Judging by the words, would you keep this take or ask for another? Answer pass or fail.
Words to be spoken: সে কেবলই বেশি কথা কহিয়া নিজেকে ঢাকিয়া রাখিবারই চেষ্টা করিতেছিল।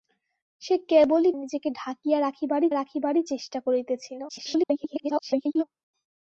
fail